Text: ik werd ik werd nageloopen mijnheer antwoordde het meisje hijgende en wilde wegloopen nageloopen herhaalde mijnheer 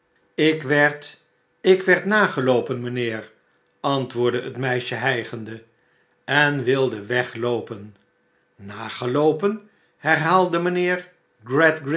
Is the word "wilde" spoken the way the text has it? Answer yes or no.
yes